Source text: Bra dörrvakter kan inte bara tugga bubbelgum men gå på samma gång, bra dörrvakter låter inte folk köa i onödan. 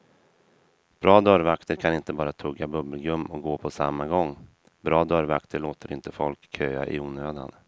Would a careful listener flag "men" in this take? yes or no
yes